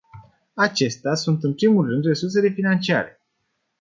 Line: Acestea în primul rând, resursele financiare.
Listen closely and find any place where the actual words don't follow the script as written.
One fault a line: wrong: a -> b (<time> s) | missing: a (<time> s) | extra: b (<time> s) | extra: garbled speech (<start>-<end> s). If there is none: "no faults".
extra: sunt (1.1 s)